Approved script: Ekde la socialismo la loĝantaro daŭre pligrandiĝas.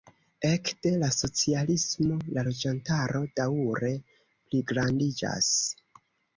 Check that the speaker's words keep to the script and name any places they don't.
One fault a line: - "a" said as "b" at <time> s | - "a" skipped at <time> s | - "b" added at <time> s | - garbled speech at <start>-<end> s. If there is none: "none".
none